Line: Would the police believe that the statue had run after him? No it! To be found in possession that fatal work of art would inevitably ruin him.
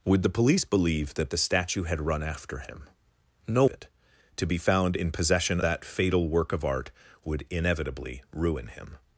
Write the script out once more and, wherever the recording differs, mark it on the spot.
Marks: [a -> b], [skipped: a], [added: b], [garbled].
Would the police believe that the statue had run after him? No it! To be found in possession that fatal work of art would inevitably ruin him.